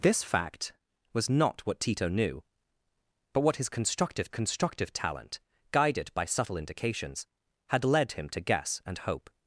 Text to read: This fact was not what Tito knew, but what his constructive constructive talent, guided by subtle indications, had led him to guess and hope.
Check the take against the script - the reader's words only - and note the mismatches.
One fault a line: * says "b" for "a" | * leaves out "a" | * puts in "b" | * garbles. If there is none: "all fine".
all fine